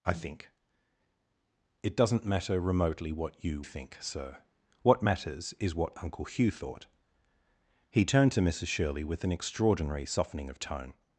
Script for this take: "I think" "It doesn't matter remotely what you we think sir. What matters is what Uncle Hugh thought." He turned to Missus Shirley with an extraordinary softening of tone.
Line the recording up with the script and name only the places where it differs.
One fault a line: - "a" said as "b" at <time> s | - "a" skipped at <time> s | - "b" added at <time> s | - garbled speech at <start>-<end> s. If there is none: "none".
- "we" skipped at 3.6 s